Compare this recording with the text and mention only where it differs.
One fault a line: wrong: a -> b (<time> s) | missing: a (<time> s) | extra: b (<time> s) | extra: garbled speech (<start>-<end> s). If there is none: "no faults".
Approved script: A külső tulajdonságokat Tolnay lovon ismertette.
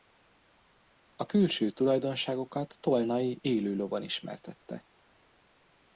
extra: élő (3.4 s)